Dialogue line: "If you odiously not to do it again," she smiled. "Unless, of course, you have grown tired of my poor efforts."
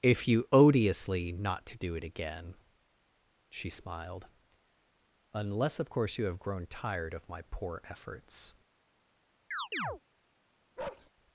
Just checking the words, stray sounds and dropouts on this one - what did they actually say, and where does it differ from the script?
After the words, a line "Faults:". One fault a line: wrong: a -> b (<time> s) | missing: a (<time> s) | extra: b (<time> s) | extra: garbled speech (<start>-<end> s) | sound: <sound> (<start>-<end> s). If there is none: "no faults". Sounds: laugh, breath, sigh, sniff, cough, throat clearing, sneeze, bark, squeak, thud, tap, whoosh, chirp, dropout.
"If you odiously not to do it again," she smiled. "Unless, of course, you have grown tired of my poor efforts."
Faults:
sound: chirp (9.5-10.0 s)
sound: bark (10.8-11.1 s)